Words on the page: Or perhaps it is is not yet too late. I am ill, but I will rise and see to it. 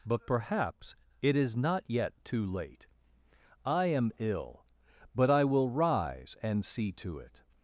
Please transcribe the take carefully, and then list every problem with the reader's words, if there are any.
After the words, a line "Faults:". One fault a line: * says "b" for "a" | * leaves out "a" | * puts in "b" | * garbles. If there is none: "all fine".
But perhaps it is not yet too late. I am ill, but I will rise and see to it.
Faults:
* says "But" for "Or"
* leaves out "is"